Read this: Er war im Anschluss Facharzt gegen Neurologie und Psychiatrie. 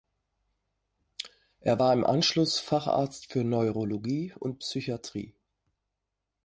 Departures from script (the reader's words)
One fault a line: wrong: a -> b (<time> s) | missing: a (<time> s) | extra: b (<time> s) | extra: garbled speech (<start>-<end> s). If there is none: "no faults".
wrong: gegen -> für (3.3 s)